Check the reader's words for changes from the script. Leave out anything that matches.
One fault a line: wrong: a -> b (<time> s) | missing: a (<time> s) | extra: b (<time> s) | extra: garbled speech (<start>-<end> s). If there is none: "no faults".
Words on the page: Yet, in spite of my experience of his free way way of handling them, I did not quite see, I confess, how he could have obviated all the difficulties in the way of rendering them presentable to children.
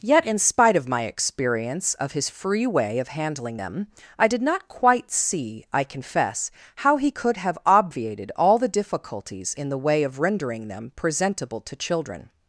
missing: way (3.0 s)